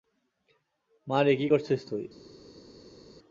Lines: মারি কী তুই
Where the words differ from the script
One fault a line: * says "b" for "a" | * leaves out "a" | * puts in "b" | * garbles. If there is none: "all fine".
* puts in "করছিস"